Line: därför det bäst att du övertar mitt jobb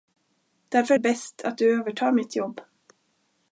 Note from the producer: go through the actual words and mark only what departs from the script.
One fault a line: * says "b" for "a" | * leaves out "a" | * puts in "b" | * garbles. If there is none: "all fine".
all fine